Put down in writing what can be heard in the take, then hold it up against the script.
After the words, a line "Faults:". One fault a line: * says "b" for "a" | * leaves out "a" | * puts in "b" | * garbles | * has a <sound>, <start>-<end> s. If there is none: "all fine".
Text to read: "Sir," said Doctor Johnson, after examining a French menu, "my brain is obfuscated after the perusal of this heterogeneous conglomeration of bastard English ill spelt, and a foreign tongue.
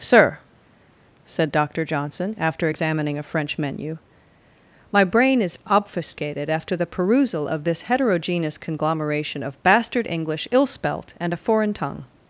"Sir," said Doctor Johnson, after examining a French menu, "my brain is obfuscated after the perusal of this heterogeneous conglomeration of bastard English ill spelt, and a foreign tongue.
Faults:
all fine